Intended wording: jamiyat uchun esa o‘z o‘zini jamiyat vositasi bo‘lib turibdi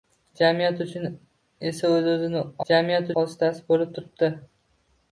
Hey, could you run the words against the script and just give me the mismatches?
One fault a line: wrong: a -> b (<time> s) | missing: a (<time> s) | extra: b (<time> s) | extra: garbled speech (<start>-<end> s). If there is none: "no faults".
no faults